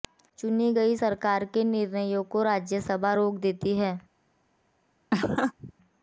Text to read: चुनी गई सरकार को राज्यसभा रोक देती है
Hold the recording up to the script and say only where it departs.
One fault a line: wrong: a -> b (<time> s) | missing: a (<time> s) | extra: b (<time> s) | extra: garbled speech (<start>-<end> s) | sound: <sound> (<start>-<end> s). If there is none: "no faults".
extra: के निर्णयों (1.5 s)
sound: laugh (5.1-5.7 s)